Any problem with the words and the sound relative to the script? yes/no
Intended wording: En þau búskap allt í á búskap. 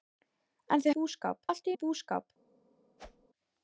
yes